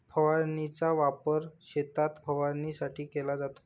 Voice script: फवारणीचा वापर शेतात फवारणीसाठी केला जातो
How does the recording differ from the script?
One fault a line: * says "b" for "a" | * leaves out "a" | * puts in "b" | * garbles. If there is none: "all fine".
all fine